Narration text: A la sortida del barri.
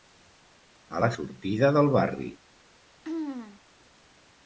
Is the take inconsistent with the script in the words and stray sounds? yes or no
yes